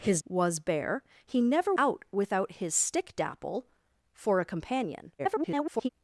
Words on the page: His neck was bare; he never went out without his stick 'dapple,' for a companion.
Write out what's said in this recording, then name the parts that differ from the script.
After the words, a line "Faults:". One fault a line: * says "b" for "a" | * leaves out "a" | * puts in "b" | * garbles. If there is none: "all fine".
His was bare; he never out without his stick 'dapple,' for a companion. [garbled]
Faults:
* leaves out "neck"
* leaves out "went"
* garbles